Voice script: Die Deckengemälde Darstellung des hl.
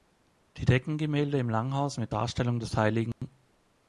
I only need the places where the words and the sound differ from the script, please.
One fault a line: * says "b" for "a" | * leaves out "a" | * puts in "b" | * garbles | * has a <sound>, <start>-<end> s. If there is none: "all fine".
* puts in "im Langhaus mit"
* has a dropout, 3.1-3.2 s